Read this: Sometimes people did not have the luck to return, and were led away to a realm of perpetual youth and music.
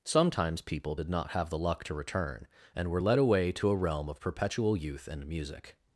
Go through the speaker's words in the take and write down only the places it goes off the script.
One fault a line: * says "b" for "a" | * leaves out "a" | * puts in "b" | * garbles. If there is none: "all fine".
all fine